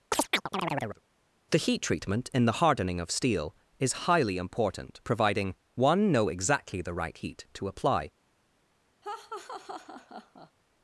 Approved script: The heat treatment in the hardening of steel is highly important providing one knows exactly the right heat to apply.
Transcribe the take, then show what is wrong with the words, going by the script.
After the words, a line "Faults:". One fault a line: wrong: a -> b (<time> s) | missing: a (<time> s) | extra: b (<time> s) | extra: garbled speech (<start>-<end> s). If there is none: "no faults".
The heat treatment in the hardening of steel is highly important providing one know exactly the right heat to apply.
Faults:
wrong: knows -> know (6.1 s)